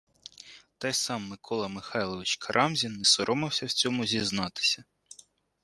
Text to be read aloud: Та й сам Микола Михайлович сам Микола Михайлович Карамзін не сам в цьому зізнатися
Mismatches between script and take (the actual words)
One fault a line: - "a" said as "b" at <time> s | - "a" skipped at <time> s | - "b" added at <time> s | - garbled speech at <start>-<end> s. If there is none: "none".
- "сам Микола Михайлович" skipped at 2.4 s
- "сам" said as "соромився" at 3.0 s